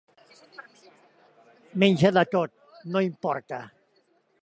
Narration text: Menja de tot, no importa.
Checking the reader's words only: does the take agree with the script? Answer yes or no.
yes